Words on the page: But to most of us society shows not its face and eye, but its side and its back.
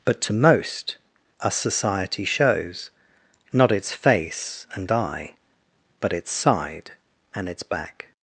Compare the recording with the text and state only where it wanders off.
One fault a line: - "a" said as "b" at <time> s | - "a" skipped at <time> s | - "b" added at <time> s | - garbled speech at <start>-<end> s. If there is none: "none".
- "of" skipped at 1.0 s